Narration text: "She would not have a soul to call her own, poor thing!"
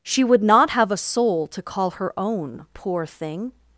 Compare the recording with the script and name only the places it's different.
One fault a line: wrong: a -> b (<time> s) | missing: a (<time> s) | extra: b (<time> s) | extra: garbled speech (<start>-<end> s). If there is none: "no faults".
no faults